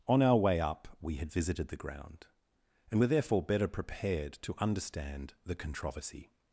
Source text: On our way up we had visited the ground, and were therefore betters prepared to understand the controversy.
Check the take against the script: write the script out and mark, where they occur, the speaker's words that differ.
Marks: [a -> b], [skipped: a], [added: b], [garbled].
On our way up we had visited the ground, and were therefore [betters -> better] prepared to understand the controversy.